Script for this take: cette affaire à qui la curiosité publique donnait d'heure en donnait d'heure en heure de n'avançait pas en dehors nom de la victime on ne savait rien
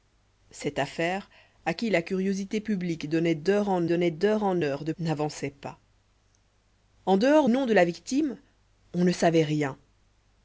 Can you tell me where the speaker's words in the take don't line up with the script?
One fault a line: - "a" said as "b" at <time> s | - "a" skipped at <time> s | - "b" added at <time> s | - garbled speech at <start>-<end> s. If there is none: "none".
none